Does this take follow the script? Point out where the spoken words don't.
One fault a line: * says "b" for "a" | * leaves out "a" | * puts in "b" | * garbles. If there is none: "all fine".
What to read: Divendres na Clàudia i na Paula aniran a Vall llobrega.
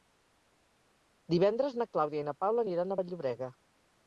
all fine